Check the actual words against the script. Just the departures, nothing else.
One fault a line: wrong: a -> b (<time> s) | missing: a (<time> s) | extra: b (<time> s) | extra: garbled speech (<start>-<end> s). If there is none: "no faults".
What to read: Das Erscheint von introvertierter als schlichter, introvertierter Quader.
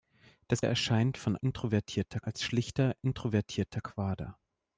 no faults